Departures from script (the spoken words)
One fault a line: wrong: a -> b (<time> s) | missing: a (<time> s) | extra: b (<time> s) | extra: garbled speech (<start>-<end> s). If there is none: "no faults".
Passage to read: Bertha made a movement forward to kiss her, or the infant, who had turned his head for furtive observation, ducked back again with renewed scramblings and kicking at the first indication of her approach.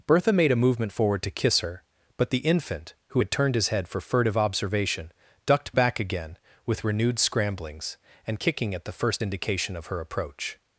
wrong: or -> but (2.2 s)